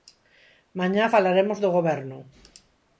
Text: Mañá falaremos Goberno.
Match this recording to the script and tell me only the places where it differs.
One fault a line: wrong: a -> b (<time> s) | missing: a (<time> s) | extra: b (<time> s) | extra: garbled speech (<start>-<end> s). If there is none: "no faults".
extra: do (1.6 s)